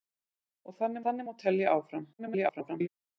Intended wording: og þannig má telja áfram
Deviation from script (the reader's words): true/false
true